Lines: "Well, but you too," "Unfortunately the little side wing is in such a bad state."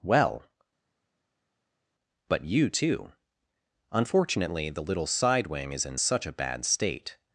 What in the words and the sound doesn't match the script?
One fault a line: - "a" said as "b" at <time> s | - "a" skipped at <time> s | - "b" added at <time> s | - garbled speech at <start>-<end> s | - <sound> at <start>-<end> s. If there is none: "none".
none